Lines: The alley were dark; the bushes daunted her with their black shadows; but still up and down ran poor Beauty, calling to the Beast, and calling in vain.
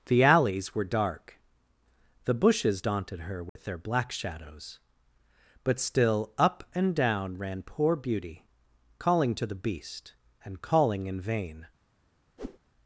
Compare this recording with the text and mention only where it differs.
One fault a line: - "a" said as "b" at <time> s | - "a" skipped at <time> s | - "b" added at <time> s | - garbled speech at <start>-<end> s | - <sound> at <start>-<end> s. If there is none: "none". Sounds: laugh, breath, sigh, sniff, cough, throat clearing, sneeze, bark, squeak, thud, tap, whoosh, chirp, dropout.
- "alley" said as "alleys" at 0.2 s
- dropout at 3.5-3.6 s
- whoosh at 12.4-12.6 s